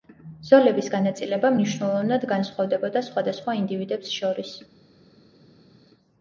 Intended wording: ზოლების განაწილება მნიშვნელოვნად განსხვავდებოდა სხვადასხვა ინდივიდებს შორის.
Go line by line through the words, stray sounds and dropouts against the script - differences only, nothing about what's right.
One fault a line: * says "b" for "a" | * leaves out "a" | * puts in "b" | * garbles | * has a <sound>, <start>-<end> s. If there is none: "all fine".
all fine